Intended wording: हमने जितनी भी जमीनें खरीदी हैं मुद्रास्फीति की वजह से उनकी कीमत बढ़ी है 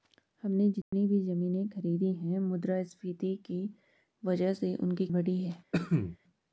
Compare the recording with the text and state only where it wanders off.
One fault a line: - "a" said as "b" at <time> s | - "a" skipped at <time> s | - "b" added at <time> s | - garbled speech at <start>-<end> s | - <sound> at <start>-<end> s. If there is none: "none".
- dropout at 0.8-0.9 s
- "कीमत" skipped at 5.1 s
- cough at 5.7-6.2 s